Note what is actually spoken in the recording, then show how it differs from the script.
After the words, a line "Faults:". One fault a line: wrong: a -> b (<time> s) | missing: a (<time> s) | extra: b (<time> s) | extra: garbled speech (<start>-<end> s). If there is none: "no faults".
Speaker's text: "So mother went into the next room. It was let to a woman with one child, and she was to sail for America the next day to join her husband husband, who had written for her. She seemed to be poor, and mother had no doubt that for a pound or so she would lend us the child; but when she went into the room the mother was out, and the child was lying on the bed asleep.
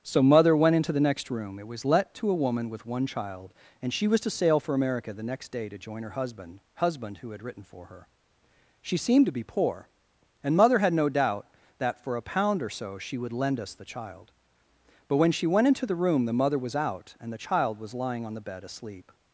"So mother went into the next room. It was let to a woman with one child, and she was to sail for America the next day to join her husband husband, who had written for her. She seemed to be poor, and mother had no doubt that for a pound or so she would lend us the child; but when she went into the room the mother was out, and the child was lying on the bed asleep.
Faults:
no faults